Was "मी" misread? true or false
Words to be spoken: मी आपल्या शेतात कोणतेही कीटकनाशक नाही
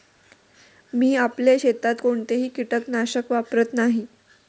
false